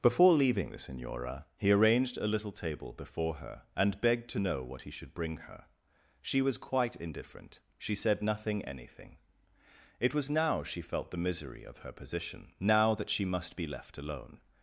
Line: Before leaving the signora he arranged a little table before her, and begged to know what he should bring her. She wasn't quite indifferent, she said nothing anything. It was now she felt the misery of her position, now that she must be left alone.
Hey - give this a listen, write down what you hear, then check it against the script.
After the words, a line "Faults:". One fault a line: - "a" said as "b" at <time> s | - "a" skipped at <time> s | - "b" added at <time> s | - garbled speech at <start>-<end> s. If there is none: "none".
Before leaving the signora he arranged a little table before her, and begged to know what he should bring her. She was quite indifferent, she said nothing anything. It was now she felt the misery of her position, now that she must be left alone.
Faults:
- "wasn't" said as "was" at 6.4 s